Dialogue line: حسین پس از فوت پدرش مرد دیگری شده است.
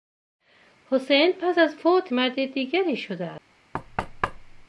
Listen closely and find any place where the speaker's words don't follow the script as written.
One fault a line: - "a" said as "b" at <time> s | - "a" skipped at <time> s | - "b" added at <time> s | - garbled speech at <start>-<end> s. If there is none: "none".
- "پدرش" skipped at 2.1 s